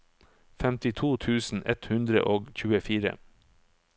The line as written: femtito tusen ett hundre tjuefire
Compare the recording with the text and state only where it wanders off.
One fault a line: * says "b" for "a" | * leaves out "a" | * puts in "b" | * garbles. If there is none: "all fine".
* puts in "og"